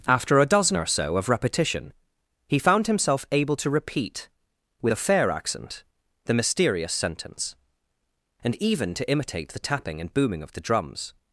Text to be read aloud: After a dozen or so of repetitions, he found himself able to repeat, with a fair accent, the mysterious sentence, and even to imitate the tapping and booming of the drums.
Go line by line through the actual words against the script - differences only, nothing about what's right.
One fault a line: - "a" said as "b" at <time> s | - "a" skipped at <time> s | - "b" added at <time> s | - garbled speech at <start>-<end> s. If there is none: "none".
- "repetitions" said as "repetition" at 1.3 s